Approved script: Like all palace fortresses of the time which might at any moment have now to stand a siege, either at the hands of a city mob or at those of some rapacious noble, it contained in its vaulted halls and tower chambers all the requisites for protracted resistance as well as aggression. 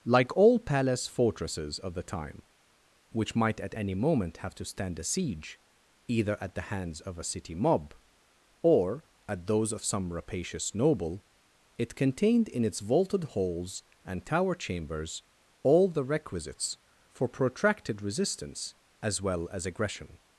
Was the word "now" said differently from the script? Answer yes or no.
yes